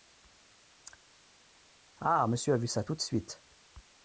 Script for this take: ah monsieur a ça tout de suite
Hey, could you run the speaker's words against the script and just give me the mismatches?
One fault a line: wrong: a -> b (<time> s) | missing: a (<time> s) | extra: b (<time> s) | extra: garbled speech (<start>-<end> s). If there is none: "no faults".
extra: vu (2.6 s)